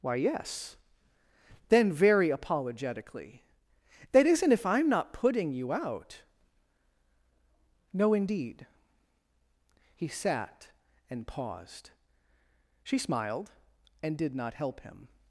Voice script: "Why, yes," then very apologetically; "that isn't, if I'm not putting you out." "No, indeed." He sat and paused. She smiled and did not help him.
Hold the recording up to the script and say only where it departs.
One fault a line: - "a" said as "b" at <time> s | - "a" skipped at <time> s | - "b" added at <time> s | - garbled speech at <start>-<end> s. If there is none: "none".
none